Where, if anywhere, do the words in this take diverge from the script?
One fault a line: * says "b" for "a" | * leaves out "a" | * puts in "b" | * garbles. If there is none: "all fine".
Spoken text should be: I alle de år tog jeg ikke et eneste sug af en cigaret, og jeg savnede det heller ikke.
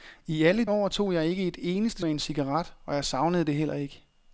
* leaves out "de"
* leaves out "sug"